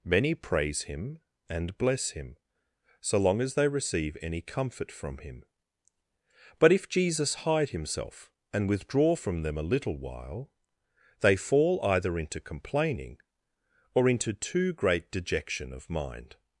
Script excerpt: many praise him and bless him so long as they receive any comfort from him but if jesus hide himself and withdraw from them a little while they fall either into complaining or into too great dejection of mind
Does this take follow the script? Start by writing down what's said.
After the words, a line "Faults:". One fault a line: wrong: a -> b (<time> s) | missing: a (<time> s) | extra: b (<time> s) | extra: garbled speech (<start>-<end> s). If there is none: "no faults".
many praise him and bless him so long as they receive any comfort from him but if jesus hide himself and withdraw from them a little while they fall either into complaining or into too great dejection of mind
Faults:
no faults